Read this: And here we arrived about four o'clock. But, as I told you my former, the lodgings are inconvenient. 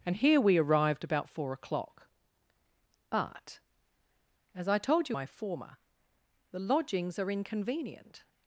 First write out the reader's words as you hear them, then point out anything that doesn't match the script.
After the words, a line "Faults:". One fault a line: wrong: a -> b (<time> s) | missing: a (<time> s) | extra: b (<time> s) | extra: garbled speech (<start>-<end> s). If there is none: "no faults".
And here we arrived about four o'clock. But, as I told you my former, the lodgings are inconvenient.
Faults:
no faults